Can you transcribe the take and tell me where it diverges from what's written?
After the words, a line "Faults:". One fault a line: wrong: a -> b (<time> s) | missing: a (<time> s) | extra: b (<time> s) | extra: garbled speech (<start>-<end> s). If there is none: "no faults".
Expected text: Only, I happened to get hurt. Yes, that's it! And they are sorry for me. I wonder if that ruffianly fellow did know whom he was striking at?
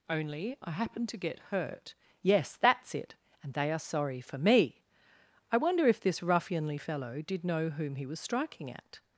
Only, I happened to get hurt. Yes, that's it! And they are sorry for me. I wonder if this ruffianly fellow did know whom he was striking at?
Faults:
wrong: that -> this (6.0 s)